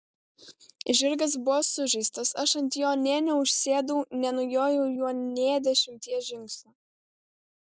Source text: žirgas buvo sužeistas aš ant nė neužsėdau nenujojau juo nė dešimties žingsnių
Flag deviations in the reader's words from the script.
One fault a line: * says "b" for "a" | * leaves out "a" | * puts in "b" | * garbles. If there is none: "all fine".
* puts in "jo"